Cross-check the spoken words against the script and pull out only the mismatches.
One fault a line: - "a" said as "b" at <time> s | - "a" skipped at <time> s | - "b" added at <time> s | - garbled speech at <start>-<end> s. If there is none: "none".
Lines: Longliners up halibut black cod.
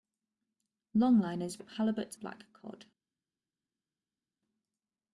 none